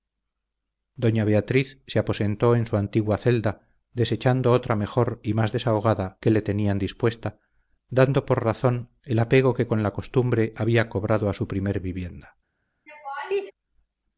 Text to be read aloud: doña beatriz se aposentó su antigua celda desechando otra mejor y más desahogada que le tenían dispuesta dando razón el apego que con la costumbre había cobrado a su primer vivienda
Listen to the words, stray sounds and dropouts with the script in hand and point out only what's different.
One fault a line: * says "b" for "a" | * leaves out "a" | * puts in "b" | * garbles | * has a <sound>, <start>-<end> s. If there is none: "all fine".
* puts in "en"
* puts in "por"
* has a laugh, 12.9-13.5 s